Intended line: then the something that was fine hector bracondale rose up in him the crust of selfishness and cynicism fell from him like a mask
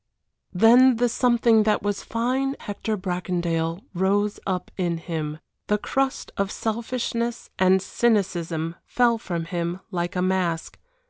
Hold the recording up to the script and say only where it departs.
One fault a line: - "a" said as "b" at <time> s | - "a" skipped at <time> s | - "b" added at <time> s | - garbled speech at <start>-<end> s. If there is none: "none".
none